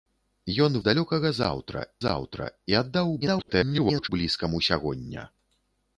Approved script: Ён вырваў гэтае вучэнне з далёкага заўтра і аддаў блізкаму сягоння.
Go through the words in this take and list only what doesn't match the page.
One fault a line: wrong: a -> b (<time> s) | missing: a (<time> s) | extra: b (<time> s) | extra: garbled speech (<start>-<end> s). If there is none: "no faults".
missing: вырваў гэтае вучэнне (0.8 s)
extra: заўтра (2.1 s)
extra: garbled speech (3.2-4.1 s)